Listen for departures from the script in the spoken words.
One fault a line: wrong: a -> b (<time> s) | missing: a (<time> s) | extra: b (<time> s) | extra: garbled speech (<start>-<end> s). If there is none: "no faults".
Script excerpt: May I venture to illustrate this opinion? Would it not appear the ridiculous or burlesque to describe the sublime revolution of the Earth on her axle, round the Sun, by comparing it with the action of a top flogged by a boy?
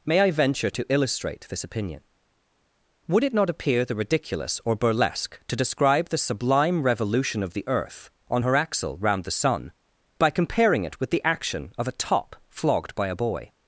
no faults